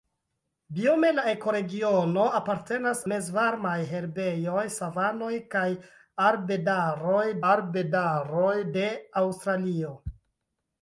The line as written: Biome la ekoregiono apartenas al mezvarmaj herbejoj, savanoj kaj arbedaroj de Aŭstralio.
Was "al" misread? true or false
true